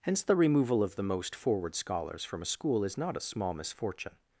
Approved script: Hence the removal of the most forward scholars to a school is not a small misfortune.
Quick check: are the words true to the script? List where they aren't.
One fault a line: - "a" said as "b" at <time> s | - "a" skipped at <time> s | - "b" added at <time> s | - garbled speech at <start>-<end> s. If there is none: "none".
- "to" said as "from" at 2.2 s